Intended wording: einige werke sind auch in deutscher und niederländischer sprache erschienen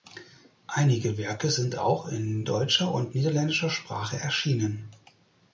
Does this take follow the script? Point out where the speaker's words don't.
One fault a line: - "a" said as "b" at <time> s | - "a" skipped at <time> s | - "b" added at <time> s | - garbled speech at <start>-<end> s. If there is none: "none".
none